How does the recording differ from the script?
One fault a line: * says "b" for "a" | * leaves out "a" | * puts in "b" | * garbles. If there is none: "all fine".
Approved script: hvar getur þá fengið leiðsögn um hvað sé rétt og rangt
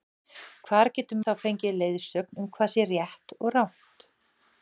all fine